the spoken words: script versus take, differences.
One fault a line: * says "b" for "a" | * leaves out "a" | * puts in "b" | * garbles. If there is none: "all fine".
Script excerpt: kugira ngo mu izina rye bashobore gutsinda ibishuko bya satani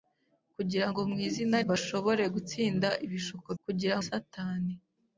* leaves out "rye"
* says "kugira" for "bya"